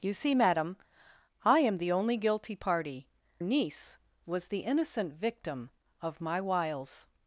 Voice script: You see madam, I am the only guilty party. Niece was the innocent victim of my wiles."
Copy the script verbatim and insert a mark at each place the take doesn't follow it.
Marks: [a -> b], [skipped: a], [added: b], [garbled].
You see madam, I am the only guilty party. Niece was the innocent victim of my wiles."